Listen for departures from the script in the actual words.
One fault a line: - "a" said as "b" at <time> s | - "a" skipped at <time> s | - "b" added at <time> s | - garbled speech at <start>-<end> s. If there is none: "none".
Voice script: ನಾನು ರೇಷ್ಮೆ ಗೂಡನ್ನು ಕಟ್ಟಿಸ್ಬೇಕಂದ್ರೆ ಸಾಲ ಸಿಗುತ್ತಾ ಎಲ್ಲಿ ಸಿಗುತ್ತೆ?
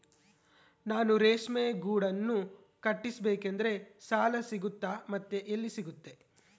- "ಮತ್ತೆ" added at 5.1 s